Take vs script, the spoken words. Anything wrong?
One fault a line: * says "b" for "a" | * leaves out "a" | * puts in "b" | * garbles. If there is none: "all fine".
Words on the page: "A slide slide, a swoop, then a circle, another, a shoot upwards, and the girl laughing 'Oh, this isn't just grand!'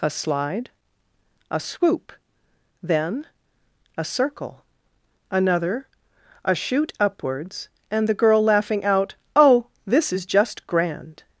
* leaves out "slide"
* puts in "out"
* says "is" for "isn't"